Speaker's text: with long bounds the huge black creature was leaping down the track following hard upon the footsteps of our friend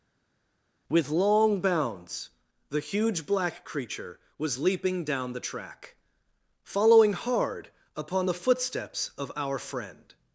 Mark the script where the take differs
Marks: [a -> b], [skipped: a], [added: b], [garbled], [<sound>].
with long bounds the huge black creature was leaping down the track following hard upon the footsteps of our friend